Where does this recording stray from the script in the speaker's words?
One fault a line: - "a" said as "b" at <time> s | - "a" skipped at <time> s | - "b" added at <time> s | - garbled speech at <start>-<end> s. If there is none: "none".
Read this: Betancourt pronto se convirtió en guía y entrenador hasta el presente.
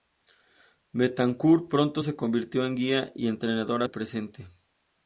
- "hasta" skipped at 3.8 s